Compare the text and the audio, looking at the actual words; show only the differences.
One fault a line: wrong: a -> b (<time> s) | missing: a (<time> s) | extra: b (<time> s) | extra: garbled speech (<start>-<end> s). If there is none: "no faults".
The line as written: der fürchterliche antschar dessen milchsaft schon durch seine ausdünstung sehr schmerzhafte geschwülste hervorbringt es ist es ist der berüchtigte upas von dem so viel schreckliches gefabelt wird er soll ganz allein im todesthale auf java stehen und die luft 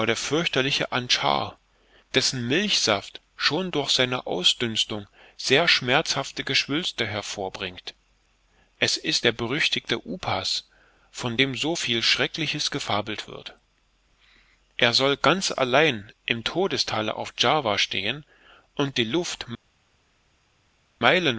missing: es ist (9.2 s)